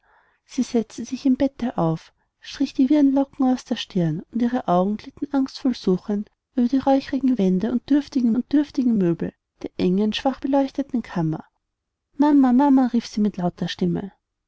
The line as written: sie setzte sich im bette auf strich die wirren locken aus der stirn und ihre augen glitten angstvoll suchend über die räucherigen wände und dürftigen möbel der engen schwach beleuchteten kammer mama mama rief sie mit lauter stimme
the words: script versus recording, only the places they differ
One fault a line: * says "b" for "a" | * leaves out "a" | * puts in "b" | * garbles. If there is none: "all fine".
* puts in "und dürftigen"